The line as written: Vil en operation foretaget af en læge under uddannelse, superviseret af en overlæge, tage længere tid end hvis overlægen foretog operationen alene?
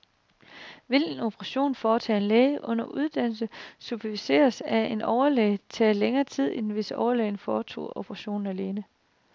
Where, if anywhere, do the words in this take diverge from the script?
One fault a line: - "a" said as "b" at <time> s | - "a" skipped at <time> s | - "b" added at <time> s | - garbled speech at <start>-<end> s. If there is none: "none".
none